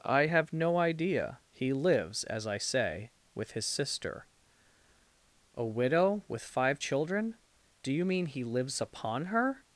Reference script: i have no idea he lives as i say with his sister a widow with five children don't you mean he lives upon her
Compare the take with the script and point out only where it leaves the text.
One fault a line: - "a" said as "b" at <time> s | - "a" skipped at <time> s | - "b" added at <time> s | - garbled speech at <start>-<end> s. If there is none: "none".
- "don't" said as "do" at 7.8 s